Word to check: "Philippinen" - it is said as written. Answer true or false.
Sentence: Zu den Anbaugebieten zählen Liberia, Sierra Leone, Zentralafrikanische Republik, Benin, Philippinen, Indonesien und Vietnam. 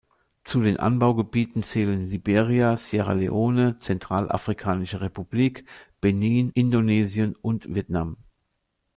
false